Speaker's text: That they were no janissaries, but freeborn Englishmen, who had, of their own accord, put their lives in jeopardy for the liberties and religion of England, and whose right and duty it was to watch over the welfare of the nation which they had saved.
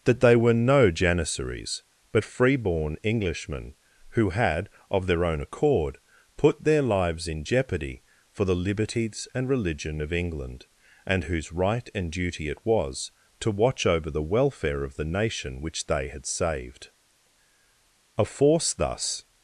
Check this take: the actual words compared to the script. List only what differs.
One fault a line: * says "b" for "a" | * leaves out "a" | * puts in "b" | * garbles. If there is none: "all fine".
* puts in "A force thus"